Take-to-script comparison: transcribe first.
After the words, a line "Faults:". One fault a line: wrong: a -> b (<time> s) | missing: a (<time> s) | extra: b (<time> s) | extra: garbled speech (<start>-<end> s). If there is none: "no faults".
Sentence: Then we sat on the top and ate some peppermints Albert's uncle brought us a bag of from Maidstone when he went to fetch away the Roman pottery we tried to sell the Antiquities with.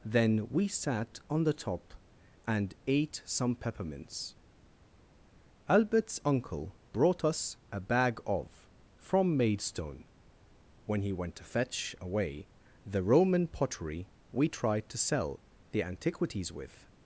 Then we sat on the top and ate some peppermints Albert's uncle brought us a bag of from Maidstone when he went to fetch away the Roman pottery we tried to sell the Antiquities with.
Faults:
no faults